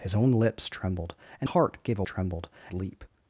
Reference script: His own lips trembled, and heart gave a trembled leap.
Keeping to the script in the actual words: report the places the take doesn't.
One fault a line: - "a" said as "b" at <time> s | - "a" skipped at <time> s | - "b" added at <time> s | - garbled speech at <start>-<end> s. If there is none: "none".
none